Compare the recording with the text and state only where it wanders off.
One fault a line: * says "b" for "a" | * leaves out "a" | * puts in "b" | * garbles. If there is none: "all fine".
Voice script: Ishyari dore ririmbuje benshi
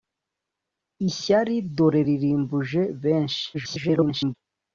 * garbles